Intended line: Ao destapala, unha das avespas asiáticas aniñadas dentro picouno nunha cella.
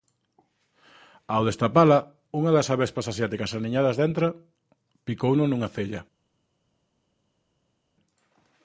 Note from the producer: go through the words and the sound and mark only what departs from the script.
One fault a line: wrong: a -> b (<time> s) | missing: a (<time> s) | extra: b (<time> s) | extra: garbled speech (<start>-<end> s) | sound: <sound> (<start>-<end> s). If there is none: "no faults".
no faults